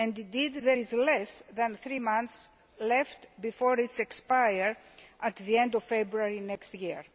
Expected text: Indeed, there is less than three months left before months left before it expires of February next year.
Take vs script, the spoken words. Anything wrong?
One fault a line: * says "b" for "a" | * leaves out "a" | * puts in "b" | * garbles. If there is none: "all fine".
* says "it expires at the end" for "months left before it expires"